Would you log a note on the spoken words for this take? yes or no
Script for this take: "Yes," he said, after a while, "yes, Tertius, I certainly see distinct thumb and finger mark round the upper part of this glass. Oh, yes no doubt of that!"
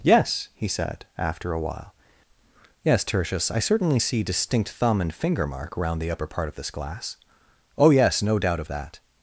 no